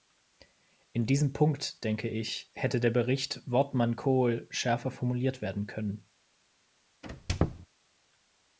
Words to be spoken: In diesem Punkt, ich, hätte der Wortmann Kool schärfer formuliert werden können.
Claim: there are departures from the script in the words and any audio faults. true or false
true